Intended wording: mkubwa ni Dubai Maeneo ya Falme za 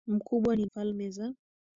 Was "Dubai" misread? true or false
true